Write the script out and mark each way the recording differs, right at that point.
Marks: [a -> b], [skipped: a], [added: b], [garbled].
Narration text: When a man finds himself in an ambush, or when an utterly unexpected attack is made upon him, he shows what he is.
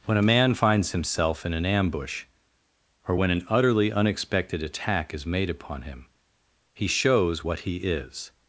When a man finds himself in an ambush, or when an utterly unexpected attack is made upon him, he shows what he is.